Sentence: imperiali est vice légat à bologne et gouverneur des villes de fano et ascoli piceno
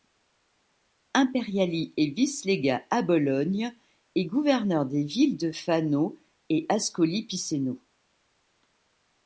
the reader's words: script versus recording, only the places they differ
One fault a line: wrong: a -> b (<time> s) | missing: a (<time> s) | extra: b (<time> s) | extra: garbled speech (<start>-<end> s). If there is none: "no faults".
no faults